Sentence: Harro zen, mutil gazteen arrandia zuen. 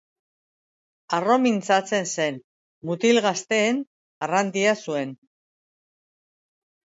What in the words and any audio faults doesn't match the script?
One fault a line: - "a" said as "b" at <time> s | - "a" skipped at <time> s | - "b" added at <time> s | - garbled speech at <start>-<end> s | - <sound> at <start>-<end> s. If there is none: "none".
- "mintzatzen" added at 1.4 s